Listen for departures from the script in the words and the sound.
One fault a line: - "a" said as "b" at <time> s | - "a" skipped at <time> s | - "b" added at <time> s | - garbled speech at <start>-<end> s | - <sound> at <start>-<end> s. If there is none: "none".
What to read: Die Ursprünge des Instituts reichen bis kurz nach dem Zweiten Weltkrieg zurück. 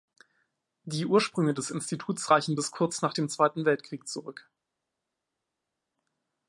none